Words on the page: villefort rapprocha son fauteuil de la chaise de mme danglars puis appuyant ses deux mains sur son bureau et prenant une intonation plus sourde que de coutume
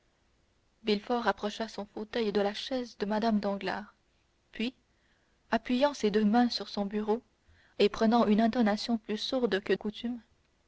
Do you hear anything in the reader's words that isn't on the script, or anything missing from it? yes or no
yes